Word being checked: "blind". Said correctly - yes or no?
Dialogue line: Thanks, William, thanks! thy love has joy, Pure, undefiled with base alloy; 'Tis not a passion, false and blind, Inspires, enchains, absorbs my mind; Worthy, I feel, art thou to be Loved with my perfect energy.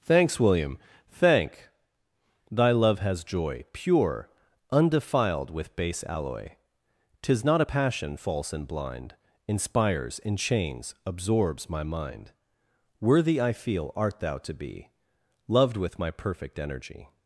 yes